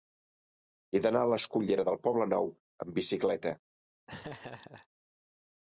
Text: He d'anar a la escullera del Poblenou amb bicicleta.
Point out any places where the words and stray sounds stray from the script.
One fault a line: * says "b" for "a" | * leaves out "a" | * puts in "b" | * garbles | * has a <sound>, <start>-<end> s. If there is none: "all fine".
* has a laugh, 4.1-4.9 s